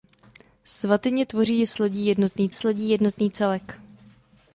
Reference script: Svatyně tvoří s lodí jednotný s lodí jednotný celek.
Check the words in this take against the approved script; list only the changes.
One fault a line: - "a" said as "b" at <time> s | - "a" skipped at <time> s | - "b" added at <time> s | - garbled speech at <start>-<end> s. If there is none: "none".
none